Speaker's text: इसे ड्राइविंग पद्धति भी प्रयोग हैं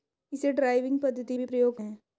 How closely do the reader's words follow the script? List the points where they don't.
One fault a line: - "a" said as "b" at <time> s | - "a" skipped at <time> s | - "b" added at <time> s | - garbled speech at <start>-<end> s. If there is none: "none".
none